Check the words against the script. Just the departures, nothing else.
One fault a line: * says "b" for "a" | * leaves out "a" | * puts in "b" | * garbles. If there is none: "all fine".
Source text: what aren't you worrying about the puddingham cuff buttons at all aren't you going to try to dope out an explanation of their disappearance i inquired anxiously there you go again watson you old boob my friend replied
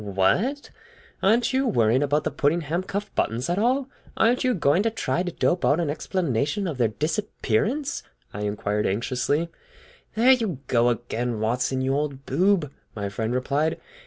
all fine